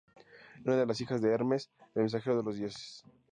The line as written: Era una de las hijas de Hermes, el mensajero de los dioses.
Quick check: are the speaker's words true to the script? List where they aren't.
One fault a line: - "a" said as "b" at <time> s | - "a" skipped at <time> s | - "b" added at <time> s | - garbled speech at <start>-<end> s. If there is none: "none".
none